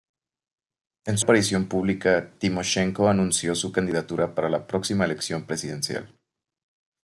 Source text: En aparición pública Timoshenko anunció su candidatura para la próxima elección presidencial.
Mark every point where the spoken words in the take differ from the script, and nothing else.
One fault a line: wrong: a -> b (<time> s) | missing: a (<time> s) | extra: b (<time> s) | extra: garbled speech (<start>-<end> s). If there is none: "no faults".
no faults